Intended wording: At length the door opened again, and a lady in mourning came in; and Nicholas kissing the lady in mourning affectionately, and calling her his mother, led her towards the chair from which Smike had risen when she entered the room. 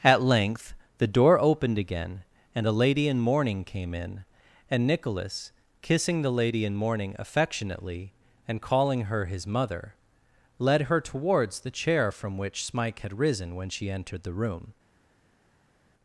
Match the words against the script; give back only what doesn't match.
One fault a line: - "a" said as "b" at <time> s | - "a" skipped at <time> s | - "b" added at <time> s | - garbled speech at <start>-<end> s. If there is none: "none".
none